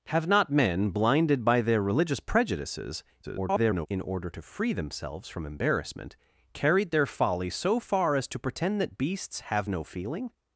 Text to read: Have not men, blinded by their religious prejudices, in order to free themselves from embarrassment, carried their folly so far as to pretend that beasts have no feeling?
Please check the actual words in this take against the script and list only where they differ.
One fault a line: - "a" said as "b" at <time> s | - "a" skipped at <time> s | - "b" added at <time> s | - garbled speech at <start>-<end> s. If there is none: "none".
- garbled speech at 3.2-3.9 s